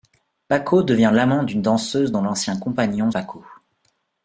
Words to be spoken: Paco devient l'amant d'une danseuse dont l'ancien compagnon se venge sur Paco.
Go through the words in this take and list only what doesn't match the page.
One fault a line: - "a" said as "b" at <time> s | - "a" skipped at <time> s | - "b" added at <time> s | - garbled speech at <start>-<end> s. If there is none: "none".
- "se venge sur" skipped at 3.1 s